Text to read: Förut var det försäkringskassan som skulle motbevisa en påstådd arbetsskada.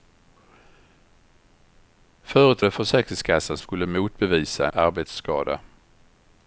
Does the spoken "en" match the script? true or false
false